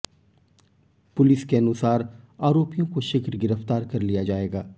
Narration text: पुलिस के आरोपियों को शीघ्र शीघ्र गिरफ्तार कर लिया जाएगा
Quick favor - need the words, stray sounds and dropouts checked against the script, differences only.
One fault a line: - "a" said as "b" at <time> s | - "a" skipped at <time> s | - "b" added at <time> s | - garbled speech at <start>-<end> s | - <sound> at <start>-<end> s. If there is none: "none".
- "अनुसार" added at 1.6 s
- "शीघ्र" skipped at 3.4 s